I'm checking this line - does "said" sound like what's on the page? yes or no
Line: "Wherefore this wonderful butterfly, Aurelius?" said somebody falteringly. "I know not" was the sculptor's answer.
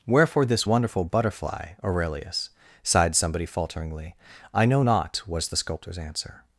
no